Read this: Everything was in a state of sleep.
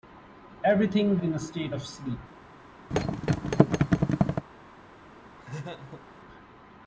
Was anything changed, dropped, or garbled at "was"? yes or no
yes